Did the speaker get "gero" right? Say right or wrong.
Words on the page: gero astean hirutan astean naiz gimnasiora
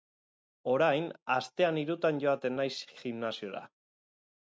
wrong